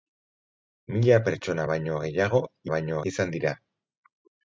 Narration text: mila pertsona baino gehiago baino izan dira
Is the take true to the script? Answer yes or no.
yes